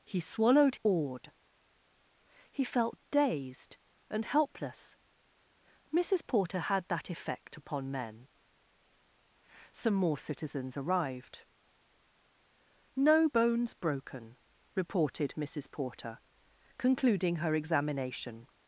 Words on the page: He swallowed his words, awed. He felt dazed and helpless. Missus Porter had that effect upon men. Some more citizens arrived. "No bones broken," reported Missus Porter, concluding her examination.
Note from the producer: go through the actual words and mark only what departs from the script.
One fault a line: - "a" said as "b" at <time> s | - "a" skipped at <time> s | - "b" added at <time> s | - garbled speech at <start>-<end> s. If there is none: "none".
- "his words" skipped at 0.8 s